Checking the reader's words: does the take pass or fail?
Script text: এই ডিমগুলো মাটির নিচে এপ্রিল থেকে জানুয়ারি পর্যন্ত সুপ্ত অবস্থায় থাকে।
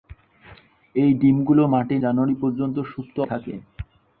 fail